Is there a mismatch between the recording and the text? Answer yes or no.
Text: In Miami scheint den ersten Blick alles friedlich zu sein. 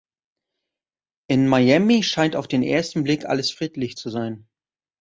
yes